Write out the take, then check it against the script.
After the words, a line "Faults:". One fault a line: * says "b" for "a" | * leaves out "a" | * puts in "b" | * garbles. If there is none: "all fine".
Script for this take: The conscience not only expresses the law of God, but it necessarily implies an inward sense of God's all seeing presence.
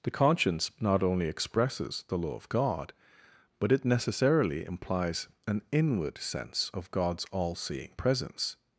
The conscience not only expresses the law of God, but it necessarily implies an inward sense of God's all seeing presence.
Faults:
all fine